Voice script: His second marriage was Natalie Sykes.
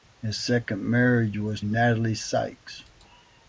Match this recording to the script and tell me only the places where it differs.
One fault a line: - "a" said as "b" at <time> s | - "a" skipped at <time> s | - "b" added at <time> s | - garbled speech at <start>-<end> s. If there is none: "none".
none